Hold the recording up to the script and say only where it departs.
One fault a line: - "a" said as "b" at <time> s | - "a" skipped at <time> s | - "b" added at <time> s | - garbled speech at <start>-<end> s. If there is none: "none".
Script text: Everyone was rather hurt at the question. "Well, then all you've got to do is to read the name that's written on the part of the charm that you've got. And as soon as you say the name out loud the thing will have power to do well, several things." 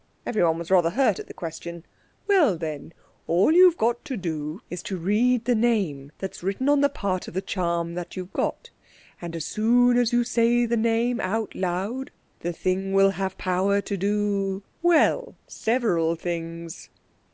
none